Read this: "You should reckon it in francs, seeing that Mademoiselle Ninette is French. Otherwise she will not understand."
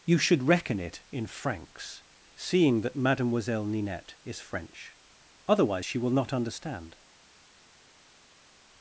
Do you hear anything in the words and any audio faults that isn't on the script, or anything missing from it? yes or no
no